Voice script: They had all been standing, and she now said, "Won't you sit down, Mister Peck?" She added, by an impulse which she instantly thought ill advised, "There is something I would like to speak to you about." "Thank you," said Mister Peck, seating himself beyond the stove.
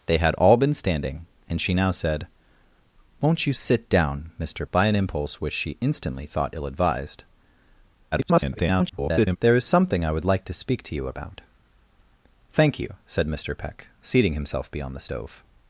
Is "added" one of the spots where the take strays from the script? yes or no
yes